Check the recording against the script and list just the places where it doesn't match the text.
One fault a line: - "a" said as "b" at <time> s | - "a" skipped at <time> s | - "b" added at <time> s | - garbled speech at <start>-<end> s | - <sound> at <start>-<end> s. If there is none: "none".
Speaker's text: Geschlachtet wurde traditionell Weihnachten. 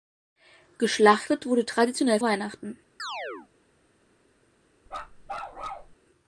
- chirp at 3.0-3.5 s
- bark at 4.9-5.9 s